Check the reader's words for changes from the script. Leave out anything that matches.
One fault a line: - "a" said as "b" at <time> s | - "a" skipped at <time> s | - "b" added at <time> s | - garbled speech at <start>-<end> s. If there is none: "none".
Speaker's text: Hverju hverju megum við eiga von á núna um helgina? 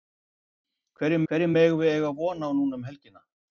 none